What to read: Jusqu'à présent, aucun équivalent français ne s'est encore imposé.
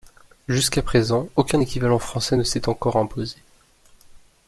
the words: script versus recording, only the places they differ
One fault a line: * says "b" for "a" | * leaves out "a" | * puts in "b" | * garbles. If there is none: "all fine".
all fine